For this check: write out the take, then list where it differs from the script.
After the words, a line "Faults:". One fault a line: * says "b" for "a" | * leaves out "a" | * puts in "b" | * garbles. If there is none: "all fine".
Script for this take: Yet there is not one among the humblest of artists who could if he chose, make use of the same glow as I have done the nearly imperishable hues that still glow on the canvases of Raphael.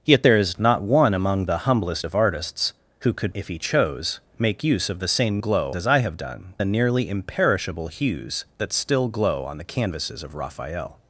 Yet there is not one among the humblest of artists who could if he chose, make use of the same glow as I have done the nearly imperishable hues that still glow on the canvases of Raphael.
Faults:
all fine